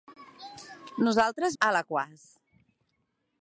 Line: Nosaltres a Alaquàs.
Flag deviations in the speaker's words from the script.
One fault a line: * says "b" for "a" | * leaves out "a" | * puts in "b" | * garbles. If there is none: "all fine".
all fine